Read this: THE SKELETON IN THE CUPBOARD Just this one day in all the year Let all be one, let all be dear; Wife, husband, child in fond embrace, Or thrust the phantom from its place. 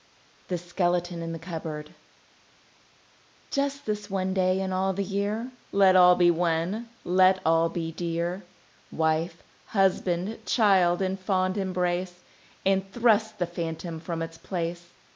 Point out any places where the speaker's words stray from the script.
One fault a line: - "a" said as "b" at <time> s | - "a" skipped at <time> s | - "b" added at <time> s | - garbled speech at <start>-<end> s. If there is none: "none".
- "Or" said as "And" at 12.7 s